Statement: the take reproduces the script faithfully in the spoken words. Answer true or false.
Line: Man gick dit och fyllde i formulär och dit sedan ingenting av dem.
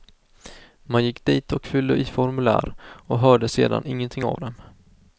false